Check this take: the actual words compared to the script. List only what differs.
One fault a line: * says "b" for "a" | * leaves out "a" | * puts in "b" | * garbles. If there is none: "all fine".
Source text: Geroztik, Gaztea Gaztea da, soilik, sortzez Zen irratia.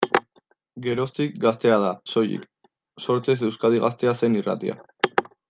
* leaves out "Gaztea"
* puts in "Euskadi Gaztea"